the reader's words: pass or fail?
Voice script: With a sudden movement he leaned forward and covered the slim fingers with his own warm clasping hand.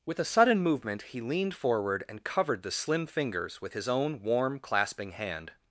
pass